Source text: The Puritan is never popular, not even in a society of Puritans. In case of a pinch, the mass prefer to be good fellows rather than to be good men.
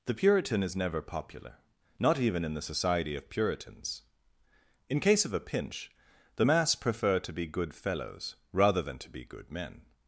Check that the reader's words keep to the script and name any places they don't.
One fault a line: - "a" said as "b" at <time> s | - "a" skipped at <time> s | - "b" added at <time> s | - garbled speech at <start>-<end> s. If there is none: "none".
- "a" said as "the" at 2.5 s